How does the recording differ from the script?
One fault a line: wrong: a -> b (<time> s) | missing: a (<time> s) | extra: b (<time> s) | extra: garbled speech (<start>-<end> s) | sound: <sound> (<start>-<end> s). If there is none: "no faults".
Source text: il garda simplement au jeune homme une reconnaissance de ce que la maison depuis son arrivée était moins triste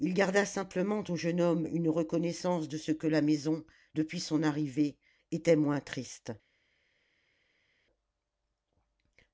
no faults